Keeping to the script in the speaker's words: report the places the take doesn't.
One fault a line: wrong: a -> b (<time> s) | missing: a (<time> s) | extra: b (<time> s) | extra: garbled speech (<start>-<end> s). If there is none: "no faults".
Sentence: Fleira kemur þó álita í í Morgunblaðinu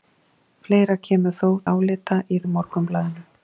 no faults